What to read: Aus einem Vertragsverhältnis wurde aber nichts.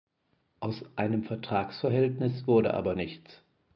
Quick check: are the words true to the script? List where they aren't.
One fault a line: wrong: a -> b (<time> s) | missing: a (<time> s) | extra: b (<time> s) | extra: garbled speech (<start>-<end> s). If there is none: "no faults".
no faults